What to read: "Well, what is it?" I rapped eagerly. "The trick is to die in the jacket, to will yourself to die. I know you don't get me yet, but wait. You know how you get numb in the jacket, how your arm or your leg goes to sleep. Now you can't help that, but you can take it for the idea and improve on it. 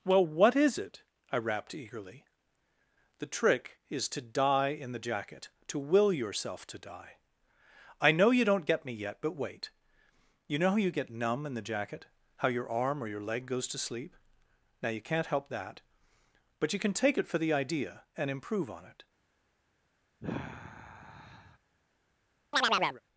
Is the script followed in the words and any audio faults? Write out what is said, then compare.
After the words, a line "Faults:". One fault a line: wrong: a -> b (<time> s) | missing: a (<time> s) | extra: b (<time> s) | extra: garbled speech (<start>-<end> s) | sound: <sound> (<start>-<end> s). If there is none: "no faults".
"Well, what is it?" I rapped eagerly. "The trick is to die in the jacket, to will yourself to die. I know you don't get me yet, but wait. You know how you get numb in the jacket, how your arm or your leg goes to sleep. Now you can't help that, but you can take it for the idea and improve on it.
Faults:
sound: sigh (20.2-21.6 s)
sound: chirp (22.5-23.0 s)